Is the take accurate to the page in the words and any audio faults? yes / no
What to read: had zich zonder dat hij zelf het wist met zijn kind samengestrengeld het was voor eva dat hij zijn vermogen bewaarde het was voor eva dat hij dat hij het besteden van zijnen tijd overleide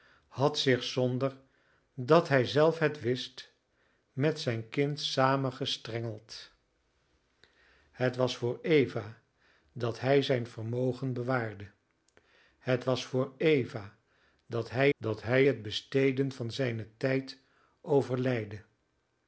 yes